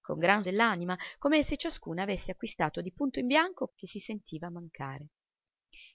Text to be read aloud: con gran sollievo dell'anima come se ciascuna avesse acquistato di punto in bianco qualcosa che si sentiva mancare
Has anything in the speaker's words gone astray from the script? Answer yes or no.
yes